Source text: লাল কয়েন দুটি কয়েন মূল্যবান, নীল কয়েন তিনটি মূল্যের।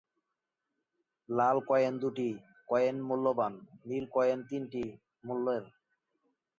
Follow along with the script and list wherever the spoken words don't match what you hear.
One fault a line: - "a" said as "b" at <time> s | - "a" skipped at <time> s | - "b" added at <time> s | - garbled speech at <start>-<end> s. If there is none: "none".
none